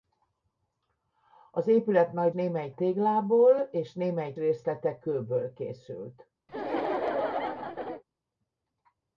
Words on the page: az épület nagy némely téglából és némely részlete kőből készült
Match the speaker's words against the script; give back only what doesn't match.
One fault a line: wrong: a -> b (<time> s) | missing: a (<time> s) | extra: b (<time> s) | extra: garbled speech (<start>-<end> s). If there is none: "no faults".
no faults